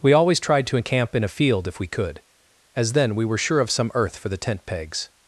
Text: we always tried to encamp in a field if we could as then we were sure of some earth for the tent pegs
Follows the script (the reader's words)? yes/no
yes